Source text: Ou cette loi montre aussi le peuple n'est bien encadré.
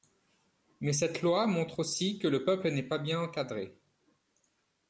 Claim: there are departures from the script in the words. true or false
true